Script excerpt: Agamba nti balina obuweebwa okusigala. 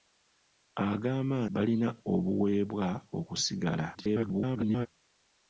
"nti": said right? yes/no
no